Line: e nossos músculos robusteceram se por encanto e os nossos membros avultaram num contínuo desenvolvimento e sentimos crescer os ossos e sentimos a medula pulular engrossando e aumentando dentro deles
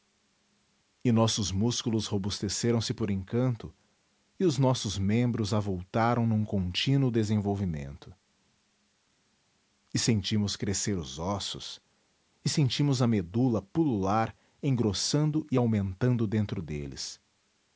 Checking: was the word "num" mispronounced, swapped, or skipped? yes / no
no